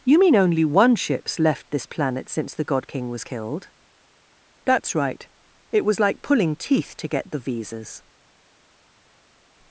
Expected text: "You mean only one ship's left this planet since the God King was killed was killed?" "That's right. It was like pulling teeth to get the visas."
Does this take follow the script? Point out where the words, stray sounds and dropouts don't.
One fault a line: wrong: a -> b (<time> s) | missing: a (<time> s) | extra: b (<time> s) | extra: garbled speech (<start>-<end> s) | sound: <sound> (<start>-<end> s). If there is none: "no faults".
missing: was killed (3.7 s)